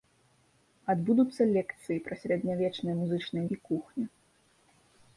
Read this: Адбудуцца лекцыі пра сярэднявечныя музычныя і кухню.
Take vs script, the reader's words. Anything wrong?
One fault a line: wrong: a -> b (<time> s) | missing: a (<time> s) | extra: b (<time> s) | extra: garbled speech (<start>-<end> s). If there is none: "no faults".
no faults